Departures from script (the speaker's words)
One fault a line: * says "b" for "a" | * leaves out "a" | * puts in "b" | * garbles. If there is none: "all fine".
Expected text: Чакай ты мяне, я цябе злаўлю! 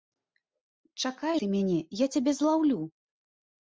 all fine